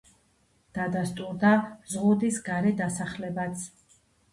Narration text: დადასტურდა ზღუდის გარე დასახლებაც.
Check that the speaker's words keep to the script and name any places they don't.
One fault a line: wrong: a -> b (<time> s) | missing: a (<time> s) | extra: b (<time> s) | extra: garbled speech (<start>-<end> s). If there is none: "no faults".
no faults